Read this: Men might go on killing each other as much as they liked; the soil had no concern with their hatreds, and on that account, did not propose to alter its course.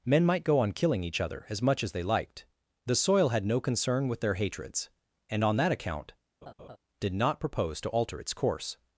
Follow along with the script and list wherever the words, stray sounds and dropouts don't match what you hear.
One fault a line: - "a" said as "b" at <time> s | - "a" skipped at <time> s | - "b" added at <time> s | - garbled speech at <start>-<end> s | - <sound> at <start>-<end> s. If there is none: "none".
- laugh at 6.4-6.8 s